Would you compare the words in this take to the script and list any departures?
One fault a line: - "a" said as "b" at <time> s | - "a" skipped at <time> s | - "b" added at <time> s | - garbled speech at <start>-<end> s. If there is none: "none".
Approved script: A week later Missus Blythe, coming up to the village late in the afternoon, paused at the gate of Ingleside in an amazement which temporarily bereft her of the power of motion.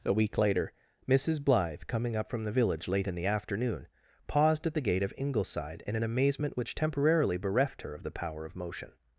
- "to" said as "from" at 2.3 s